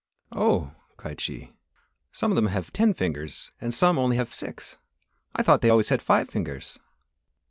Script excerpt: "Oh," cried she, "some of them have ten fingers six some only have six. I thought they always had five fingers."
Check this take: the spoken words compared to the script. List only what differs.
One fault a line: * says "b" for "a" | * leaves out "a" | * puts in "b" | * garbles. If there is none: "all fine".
* says "and" for "six"